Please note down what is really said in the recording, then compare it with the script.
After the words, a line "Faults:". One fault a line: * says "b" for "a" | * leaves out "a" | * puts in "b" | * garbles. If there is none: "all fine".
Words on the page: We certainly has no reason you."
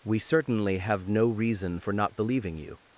We certainly have no reason for not believing you."
Faults:
* says "have" for "has"
* puts in "for not believing"